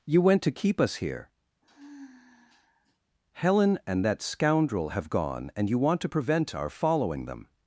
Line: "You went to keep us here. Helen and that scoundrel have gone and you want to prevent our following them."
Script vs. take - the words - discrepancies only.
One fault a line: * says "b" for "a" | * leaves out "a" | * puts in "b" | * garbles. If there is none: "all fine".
all fine